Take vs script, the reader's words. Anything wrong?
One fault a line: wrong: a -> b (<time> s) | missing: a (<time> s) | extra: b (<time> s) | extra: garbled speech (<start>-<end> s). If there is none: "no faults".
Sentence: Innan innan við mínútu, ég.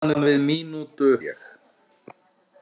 no faults